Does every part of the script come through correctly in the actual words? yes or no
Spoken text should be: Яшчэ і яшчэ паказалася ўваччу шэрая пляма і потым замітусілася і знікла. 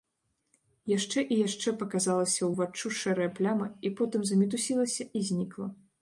yes